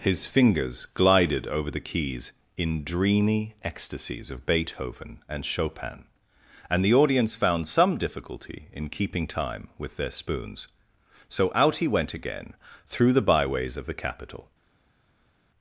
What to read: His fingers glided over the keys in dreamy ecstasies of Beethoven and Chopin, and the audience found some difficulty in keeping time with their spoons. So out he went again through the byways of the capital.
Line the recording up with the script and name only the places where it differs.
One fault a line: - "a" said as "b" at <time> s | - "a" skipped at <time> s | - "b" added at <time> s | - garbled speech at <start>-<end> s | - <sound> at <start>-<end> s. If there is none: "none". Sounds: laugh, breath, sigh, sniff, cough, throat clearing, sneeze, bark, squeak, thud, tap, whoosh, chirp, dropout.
none